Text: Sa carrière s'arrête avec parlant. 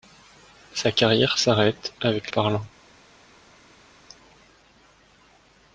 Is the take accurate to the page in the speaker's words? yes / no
yes